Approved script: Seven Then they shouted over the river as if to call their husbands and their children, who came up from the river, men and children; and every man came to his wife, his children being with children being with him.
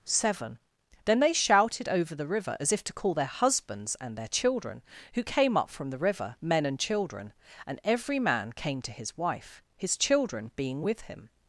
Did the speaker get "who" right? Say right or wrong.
right